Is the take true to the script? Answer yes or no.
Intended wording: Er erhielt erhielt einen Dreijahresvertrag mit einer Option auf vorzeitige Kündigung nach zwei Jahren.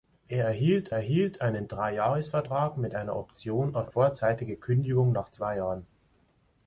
yes